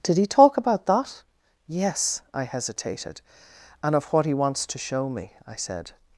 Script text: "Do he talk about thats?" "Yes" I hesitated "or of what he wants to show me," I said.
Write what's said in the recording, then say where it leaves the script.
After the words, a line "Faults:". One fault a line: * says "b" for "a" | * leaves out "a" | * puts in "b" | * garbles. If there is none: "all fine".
"Did he talk about that?" "Yes" I hesitated "and of what he wants to show me," I said.
Faults:
* says "Did" for "Do"
* says "that" for "thats"
* says "and" for "or"